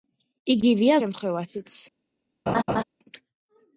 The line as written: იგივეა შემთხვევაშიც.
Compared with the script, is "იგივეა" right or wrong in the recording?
right